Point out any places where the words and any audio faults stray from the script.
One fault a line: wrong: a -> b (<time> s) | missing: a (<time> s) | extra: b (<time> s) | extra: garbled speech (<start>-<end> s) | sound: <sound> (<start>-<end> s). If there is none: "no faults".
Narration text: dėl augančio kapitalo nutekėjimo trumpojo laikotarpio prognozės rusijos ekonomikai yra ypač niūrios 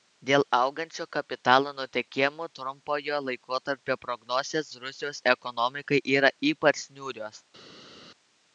no faults